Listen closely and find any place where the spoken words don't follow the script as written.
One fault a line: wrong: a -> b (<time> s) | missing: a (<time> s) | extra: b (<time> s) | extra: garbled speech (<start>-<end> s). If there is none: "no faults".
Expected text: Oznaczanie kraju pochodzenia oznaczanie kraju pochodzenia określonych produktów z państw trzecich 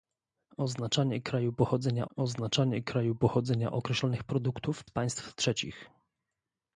no faults